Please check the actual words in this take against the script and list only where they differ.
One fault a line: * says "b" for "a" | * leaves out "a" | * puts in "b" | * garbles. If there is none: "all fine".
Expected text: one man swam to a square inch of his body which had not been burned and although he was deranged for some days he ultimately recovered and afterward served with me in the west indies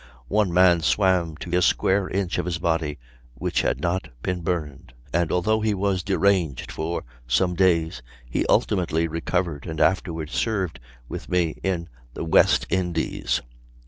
all fine